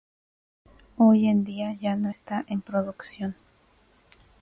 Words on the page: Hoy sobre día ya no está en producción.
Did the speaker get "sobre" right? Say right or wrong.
wrong